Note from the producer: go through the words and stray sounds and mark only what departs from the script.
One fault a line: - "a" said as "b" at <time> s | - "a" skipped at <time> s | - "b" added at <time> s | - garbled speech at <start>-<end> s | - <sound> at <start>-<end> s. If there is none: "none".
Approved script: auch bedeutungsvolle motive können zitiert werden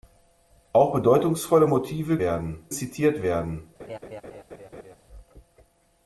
- "können" said as "werden" at 2.2 s
- laugh at 3.8-5.0 s